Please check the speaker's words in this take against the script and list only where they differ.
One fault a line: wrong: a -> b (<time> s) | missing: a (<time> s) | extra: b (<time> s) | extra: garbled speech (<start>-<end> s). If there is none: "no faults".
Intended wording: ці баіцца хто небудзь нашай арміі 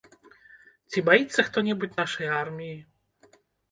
no faults